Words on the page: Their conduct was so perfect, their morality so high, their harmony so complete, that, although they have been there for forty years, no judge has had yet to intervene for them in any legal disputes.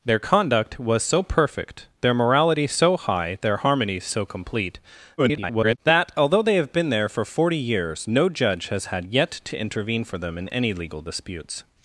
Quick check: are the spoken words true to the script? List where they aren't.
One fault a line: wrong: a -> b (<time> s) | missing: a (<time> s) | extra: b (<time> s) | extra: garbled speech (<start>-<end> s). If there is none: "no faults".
extra: garbled speech (5.2-5.8 s)